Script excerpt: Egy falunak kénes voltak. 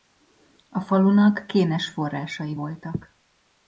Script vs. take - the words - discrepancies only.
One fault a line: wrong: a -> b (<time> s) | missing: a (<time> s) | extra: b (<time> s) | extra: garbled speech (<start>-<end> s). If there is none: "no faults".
wrong: Egy -> A (0.7 s)
extra: forrásai (1.9 s)